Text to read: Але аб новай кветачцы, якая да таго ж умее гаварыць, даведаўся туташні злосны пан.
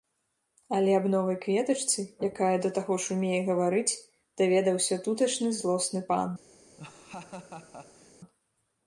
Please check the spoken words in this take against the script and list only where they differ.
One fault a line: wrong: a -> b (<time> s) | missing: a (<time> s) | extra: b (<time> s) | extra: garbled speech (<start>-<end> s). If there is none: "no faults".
no faults